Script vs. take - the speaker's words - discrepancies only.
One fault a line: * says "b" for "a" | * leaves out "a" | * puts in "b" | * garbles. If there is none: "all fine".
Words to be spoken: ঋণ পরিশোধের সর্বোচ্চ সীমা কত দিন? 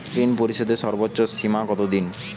all fine